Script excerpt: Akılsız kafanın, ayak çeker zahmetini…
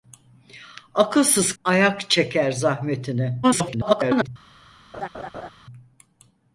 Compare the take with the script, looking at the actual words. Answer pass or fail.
fail